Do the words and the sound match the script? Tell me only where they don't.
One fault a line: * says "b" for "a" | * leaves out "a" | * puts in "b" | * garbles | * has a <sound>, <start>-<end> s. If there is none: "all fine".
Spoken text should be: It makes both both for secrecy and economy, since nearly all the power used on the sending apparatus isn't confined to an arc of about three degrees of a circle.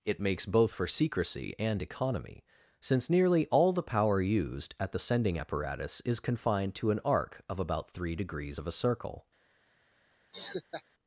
* leaves out "both"
* says "at" for "on"
* says "is" for "isn't"
* has a laugh, 10.3-10.8 s